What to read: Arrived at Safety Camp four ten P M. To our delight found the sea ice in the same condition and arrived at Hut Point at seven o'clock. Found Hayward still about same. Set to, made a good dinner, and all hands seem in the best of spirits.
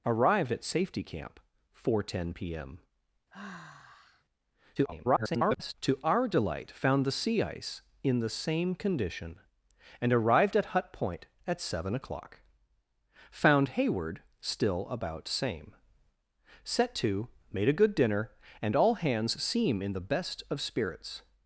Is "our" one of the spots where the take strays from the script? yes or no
no